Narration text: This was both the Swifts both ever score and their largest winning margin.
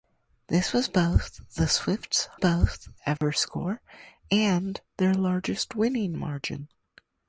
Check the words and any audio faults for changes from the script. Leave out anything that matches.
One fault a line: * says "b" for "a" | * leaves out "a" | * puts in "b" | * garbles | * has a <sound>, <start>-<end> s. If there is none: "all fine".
* has a dropout, 3.2-3.2 s